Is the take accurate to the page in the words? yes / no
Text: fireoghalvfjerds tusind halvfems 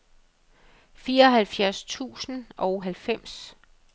no